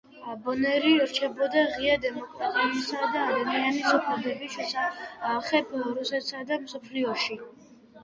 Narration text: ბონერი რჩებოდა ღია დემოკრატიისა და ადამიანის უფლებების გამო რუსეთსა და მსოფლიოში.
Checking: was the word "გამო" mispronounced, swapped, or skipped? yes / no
yes